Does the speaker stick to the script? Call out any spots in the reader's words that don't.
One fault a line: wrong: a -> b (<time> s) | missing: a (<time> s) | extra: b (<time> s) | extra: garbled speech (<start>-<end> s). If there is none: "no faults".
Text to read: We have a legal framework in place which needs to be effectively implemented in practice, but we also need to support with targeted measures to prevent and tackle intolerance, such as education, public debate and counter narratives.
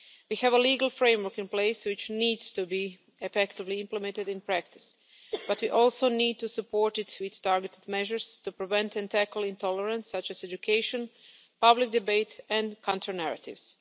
extra: it (7.0 s)